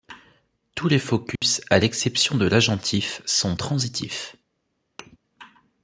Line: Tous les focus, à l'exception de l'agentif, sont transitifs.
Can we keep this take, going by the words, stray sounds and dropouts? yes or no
no